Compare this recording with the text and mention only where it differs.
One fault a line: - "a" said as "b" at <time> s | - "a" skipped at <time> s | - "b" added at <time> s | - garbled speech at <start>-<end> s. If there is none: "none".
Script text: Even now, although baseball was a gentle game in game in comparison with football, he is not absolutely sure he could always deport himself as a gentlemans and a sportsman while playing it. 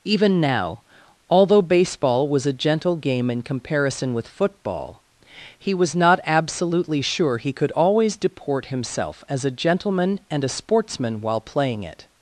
- "game in" skipped at 3.4 s
- "is" said as "was" at 5.7 s
- "gentlemans" said as "gentleman" at 9.5 s